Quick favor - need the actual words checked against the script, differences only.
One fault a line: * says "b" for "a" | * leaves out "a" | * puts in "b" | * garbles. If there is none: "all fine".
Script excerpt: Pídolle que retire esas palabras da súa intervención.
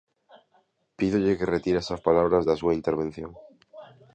all fine